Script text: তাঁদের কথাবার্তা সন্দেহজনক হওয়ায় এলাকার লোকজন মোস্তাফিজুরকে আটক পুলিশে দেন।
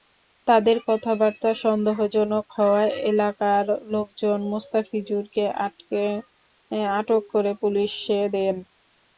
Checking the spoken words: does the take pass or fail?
fail